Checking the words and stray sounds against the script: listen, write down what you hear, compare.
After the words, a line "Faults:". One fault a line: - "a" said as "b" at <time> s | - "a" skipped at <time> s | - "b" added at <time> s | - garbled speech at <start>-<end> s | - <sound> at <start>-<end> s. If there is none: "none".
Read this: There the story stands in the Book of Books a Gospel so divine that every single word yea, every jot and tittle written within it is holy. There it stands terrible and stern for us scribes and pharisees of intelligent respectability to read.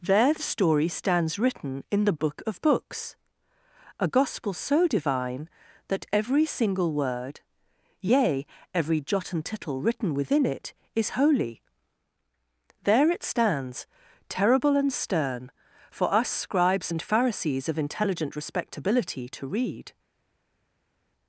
There the story stands written in the Book of Books a Gospel so divine that every single word yea, every jot and tittle written within it is holy. There it stands terrible and stern for us scribes and pharisees of intelligent respectability to read.
Faults:
- "written" added at 1.4 s